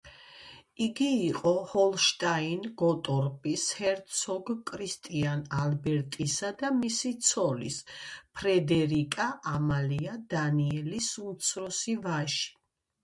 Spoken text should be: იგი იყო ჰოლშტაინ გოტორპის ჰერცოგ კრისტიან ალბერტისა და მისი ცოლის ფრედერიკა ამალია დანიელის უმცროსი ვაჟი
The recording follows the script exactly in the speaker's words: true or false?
true